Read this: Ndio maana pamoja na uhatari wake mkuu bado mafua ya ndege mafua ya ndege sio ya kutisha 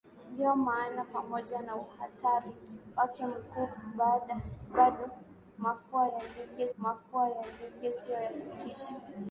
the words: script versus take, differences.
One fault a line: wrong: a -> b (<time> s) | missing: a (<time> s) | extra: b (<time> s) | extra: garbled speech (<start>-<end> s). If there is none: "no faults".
no faults